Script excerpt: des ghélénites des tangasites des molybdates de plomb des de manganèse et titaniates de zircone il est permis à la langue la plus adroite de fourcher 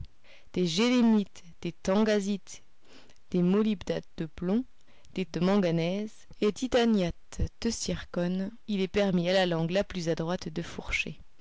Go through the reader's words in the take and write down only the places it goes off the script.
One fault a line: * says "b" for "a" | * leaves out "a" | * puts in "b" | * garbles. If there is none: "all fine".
all fine